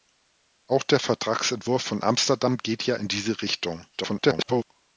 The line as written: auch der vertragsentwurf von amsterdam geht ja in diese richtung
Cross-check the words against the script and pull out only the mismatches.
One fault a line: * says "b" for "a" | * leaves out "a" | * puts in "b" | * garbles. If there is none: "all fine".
* garbles